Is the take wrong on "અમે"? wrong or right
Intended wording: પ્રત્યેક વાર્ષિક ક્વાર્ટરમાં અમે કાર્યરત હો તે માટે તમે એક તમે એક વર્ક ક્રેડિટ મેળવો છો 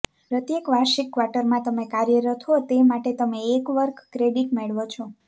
wrong